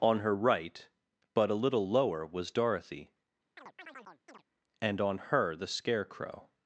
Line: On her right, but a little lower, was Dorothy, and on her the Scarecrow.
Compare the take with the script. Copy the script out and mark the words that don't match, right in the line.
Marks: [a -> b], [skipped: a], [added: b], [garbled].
On her right, but a little lower, was Dorothy, and on her the Scarecrow.